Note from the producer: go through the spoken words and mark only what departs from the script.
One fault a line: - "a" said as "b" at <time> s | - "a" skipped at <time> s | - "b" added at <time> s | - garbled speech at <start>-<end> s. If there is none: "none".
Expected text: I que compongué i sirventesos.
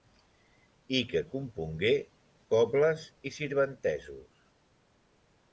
- "cobles" added at 2.5 s